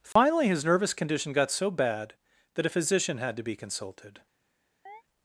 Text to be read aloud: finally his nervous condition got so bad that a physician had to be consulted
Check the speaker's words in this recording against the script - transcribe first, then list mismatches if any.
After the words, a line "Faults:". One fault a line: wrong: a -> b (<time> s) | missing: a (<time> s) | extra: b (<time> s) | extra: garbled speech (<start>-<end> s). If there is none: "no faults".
finally his nervous condition got so bad that a physician had to be consulted
Faults:
no faults